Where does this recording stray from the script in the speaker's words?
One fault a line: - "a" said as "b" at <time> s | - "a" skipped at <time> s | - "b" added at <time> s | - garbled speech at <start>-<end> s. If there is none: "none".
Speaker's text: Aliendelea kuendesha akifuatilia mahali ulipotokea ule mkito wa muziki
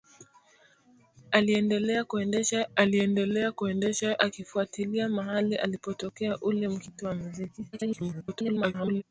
- "aliendelea kuendesha" added at 2.8 s
- garbled speech at 7.7-9.0 s